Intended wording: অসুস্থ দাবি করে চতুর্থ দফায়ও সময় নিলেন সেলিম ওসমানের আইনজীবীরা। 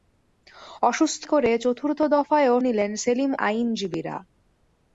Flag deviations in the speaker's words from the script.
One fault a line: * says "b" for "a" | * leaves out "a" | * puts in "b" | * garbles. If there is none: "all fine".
* leaves out "দাবি"
* leaves out "সময়"
* leaves out "ওসমানের"